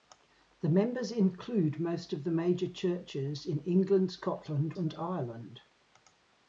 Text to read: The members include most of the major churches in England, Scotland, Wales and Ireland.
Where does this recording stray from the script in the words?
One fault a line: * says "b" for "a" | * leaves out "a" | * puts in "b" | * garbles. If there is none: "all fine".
* leaves out "Wales"